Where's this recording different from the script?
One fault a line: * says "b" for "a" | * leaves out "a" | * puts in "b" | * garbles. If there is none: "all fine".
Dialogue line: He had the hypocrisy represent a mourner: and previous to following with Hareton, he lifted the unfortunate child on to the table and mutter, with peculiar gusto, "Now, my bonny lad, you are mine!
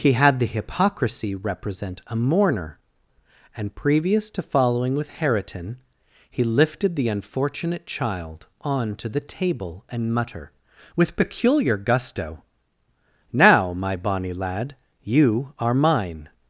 all fine